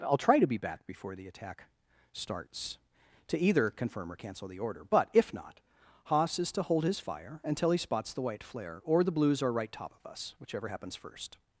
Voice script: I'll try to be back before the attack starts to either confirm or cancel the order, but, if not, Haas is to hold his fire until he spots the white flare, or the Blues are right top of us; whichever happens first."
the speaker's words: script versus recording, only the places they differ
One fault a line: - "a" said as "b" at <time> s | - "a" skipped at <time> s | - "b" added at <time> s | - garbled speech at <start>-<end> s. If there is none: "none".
none